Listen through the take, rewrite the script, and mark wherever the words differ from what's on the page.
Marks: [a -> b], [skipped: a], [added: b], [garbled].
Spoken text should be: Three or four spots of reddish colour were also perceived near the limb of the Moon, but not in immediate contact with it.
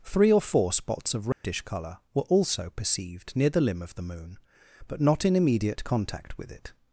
Three or four spots of reddish colour were also perceived near the limb of the Moon, but not in immediate contact with it.